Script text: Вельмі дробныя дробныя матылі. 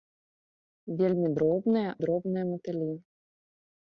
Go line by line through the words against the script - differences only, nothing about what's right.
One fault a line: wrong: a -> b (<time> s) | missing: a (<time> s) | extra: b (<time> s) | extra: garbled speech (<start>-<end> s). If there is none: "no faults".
no faults